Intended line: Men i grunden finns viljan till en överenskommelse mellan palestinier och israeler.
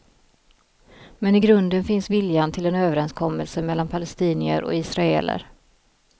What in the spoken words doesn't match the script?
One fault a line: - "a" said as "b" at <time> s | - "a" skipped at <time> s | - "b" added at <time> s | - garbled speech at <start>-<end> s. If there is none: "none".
none